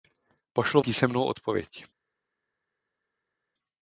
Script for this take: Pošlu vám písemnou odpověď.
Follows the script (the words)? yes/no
no